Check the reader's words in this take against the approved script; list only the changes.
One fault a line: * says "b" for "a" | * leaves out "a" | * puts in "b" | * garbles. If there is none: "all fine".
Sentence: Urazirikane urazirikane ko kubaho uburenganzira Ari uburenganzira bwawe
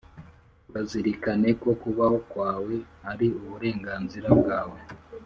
* leaves out "urazirikane"
* says "kwawe" for "uburenganzira"